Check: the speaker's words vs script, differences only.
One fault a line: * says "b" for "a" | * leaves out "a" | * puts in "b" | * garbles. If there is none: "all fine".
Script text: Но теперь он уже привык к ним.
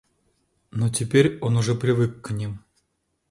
all fine